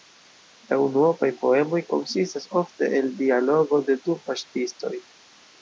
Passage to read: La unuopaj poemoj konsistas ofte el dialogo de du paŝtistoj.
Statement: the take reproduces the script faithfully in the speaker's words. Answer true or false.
true